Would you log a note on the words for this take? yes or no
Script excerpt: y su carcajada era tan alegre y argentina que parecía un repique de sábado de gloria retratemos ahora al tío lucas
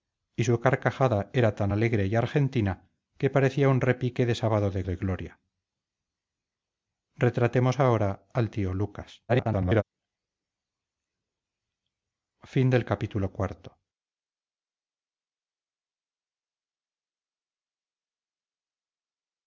yes